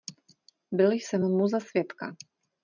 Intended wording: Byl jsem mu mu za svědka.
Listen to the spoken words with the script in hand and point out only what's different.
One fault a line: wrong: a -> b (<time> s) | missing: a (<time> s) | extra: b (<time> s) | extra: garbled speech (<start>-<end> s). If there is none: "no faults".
missing: mu (1.5 s)